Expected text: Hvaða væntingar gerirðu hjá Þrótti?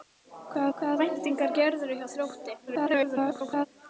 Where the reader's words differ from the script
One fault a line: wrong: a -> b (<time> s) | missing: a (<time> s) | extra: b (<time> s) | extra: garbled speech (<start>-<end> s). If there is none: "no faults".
extra: hvaða (0.8 s)
extra: garbled speech (2.7-3.7 s)